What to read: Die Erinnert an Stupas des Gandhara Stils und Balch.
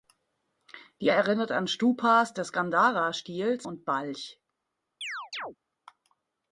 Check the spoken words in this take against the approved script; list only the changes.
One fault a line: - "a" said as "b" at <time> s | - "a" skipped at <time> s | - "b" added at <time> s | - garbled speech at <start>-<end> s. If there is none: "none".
none